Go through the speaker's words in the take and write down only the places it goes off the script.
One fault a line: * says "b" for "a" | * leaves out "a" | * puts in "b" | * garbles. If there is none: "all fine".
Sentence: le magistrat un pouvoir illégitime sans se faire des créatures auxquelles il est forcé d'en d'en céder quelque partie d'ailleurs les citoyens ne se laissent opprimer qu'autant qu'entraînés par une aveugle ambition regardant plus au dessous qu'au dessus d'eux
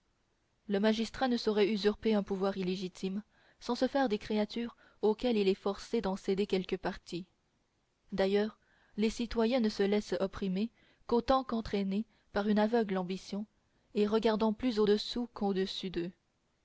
* puts in "ne saurait usurper"
* leaves out "d'en"
* puts in "et"